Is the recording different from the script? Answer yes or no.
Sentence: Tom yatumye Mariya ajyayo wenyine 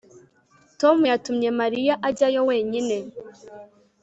no